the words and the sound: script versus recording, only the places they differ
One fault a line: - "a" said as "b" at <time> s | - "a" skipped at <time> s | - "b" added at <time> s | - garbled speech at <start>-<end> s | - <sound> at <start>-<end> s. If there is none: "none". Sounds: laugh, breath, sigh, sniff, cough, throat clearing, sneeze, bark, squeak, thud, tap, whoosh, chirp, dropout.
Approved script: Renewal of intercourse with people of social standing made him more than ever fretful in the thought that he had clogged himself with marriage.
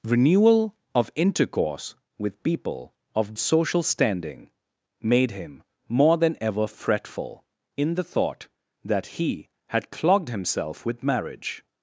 none